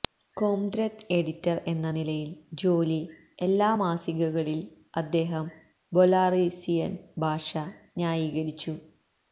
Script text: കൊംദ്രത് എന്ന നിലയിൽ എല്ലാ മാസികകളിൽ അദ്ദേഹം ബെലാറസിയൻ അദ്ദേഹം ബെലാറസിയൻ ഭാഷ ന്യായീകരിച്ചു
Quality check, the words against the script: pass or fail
fail